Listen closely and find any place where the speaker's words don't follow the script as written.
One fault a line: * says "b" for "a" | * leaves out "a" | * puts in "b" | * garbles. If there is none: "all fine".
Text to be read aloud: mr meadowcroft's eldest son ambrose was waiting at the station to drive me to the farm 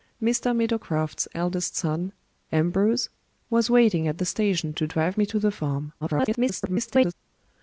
* garbles